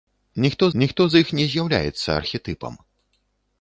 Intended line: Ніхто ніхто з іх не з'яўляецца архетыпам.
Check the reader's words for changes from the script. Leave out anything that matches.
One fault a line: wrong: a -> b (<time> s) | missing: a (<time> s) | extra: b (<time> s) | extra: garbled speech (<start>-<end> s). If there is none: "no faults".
no faults